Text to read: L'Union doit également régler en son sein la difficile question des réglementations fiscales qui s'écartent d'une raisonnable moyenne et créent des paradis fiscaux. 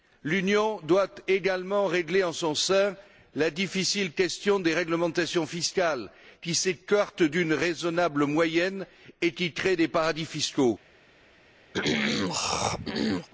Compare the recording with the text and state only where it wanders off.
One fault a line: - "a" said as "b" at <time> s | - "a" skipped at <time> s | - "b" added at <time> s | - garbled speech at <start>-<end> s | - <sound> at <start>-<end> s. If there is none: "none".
- "qui" added at 9.3 s
- throat clearing at 11.7-13.3 s